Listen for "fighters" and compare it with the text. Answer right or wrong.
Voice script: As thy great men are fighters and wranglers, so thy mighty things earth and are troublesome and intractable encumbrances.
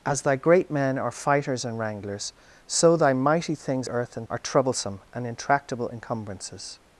right